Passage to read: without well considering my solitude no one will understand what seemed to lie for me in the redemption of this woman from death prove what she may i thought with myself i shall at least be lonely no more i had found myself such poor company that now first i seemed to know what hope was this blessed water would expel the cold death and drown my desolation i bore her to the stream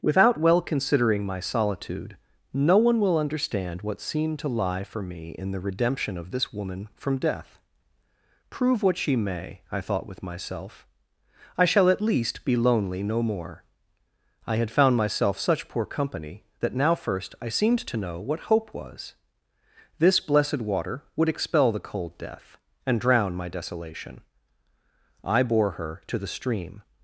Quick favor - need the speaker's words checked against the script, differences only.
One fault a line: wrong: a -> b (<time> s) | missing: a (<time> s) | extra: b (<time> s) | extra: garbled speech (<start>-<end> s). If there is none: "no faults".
no faults